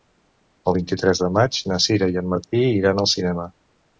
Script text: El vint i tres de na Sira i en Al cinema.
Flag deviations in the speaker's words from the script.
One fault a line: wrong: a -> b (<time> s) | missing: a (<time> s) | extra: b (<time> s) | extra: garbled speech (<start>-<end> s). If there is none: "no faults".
extra: maig (1.4 s)
extra: Martí iran (2.3 s)